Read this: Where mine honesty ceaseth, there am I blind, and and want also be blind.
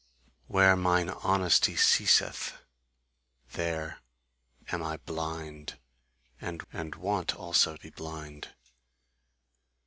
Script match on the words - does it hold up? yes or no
yes